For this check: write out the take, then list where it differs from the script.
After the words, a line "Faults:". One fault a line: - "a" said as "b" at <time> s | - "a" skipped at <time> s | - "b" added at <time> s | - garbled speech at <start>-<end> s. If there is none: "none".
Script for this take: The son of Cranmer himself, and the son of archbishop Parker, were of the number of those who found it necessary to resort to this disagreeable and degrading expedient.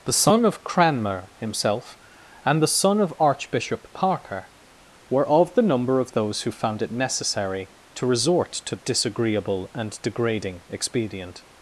The son of Cranmer himself, and the son of archbishop Parker, were of the number of those who found it necessary to resort to disagreeable and degrading expedient.
Faults:
- "this" skipped at 8.8 s